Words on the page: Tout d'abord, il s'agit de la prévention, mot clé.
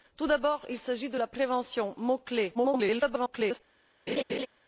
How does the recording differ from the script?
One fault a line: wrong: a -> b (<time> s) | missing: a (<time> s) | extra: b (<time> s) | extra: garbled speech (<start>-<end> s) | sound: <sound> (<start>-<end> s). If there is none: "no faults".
extra: garbled speech (2.5-3.6 s)
sound: laugh (4.1-4.5 s)